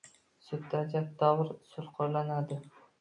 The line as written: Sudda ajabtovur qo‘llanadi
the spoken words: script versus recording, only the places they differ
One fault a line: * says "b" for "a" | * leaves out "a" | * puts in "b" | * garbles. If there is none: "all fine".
* puts in "usul"